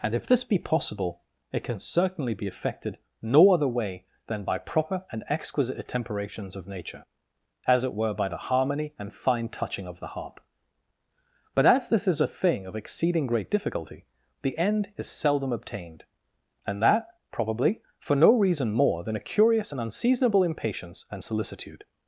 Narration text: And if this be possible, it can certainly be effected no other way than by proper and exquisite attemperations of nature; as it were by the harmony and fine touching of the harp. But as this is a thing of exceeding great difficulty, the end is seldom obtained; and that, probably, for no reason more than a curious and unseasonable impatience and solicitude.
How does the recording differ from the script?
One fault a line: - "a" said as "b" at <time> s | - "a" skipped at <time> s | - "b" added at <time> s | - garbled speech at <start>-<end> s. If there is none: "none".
none